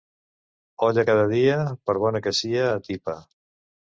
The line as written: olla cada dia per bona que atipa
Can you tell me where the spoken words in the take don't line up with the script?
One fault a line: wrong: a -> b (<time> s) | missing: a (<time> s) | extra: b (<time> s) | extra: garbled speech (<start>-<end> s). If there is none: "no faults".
extra: sia (2.4 s)